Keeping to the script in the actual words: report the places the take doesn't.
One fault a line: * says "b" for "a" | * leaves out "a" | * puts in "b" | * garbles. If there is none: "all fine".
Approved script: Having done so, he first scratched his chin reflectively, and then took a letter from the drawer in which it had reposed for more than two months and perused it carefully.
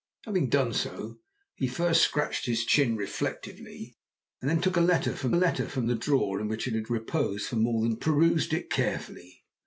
* puts in "letter from"
* leaves out "two months and"